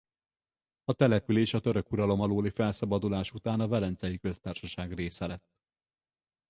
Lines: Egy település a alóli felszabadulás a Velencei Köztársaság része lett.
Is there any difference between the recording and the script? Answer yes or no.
yes